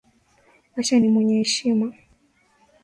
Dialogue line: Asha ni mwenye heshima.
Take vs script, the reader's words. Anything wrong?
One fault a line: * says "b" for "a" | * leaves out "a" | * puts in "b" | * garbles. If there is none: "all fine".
all fine